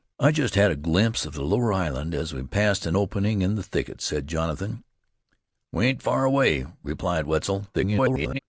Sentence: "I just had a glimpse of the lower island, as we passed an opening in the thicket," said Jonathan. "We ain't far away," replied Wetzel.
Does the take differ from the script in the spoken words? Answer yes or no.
yes